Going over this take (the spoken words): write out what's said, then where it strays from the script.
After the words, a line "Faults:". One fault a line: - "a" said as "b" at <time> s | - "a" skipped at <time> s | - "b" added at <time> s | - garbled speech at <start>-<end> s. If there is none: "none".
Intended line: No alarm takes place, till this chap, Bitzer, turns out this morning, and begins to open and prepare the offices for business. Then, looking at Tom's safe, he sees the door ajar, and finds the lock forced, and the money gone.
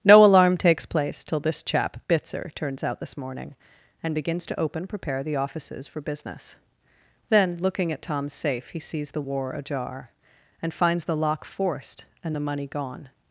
No alarm takes place, till this chap, Bitzer, turns out this morning, and begins to open prepare the offices for business. Then, looking at Tom's safe, he sees the war ajar, and finds the lock forced, and the money gone.
Faults:
- "and" skipped at 4.9 s
- "door" said as "war" at 9.2 s